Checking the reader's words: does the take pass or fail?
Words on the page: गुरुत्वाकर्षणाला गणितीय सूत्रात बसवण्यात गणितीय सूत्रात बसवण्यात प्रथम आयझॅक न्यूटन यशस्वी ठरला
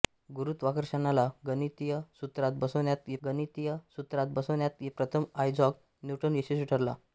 pass